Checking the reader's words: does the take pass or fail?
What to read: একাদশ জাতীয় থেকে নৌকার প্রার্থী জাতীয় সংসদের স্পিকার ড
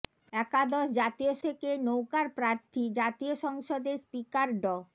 pass